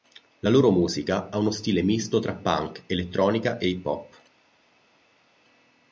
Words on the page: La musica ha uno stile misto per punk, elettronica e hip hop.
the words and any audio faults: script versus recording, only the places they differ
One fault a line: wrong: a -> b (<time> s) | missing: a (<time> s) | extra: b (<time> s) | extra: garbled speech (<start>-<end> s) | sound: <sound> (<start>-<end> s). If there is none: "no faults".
extra: loro (0.5 s)
wrong: per -> tra (2.2 s)